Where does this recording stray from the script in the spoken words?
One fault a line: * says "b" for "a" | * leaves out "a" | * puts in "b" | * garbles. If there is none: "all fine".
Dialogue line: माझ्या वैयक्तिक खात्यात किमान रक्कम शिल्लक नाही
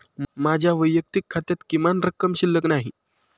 all fine